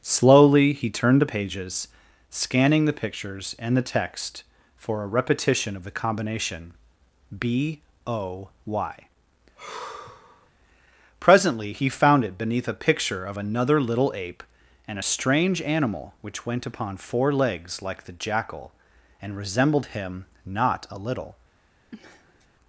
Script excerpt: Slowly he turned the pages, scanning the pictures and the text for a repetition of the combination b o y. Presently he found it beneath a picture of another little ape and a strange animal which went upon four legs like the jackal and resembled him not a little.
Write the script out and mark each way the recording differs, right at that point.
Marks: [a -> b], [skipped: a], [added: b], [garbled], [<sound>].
Slowly he turned the pages, scanning the pictures and the text for a repetition of the combination b o y. [sigh] Presently he found it beneath a picture of another little ape and a strange animal which went upon four legs like the jackal and resembled him not a little. [sniff]